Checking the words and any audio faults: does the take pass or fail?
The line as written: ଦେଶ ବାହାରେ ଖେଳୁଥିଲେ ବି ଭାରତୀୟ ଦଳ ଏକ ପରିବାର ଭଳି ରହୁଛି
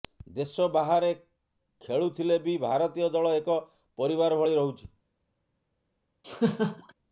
fail